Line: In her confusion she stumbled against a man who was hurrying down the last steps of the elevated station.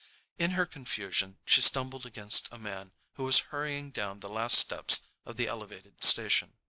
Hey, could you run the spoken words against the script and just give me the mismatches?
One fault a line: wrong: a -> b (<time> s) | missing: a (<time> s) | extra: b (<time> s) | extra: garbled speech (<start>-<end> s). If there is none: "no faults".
no faults